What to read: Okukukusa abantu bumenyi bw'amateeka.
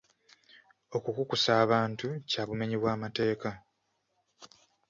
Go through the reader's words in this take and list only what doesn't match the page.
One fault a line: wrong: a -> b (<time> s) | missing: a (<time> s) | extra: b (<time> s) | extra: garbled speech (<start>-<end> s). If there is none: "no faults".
extra: kya (2.3 s)